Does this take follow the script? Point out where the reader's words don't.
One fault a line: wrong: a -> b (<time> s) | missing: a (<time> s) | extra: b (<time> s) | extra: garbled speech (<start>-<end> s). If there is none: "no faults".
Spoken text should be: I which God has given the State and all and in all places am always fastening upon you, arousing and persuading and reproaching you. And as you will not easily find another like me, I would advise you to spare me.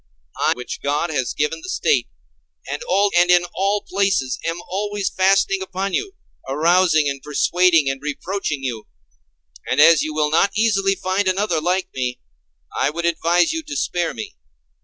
no faults